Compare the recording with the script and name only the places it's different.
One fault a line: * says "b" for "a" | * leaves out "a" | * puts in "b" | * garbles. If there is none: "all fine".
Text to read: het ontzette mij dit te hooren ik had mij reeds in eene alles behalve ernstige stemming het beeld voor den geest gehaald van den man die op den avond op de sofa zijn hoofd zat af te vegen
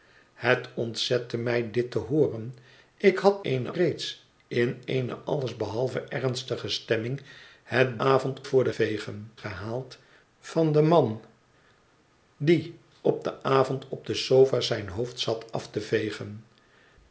* says "eene" for "mij"
* says "avond" for "beeld"
* says "vegen" for "geest"